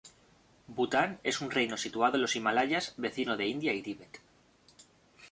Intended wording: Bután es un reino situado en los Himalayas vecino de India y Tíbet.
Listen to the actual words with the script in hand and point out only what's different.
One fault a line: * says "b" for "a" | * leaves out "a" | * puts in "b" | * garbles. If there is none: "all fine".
all fine